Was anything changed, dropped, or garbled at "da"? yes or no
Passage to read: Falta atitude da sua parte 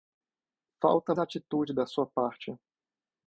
no